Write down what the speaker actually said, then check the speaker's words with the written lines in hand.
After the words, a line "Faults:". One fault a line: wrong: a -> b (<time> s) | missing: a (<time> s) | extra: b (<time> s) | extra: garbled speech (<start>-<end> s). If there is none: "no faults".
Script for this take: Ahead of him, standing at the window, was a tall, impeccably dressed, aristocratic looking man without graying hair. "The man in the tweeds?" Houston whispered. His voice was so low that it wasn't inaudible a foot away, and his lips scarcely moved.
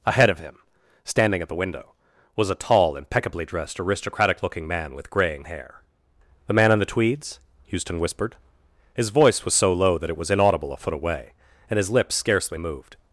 Ahead of him, standing at the window, was a tall, impeccably dressed, aristocratic looking man with graying hair. "The man in the tweeds?" Houston whispered. His voice was so low that it was inaudible a foot away, and his lips scarcely moved.
Faults:
wrong: without -> with (5.0 s)
wrong: wasn't -> was (10.2 s)